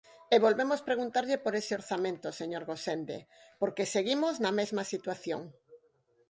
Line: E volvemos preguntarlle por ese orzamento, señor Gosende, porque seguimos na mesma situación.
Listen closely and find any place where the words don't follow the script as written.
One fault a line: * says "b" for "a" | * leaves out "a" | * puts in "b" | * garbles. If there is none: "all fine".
all fine